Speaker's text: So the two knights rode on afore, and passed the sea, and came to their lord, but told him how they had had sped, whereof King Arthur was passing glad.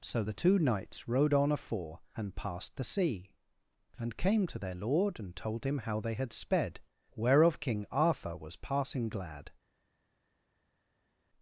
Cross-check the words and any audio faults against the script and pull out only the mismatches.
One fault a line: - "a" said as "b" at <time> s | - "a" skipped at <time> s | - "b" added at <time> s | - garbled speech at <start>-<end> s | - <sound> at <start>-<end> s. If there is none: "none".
- "but" said as "and" at 5.2 s
- "had" skipped at 6.3 s